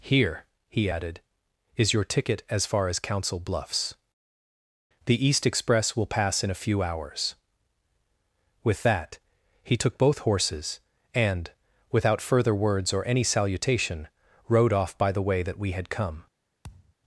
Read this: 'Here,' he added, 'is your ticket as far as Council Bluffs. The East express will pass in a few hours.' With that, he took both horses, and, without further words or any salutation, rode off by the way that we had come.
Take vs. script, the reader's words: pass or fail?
pass